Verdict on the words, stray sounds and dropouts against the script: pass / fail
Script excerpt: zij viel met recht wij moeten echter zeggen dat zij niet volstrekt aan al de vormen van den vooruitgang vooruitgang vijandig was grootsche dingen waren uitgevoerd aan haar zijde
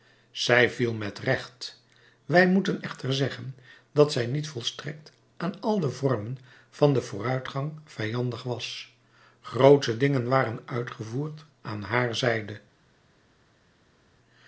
fail